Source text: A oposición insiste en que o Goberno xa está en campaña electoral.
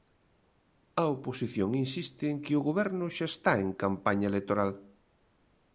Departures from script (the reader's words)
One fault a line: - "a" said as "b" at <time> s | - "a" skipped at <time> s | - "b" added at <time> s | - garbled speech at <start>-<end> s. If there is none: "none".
none